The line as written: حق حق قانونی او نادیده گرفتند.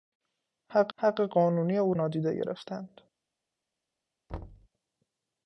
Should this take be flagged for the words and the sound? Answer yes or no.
yes